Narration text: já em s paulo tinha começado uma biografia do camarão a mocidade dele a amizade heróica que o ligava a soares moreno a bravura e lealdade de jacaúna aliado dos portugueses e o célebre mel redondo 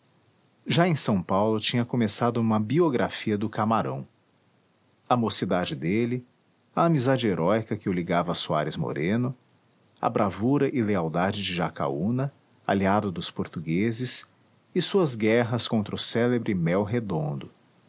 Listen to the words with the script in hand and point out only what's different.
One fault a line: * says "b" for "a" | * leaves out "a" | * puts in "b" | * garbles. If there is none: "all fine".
* puts in "suas guerras contra"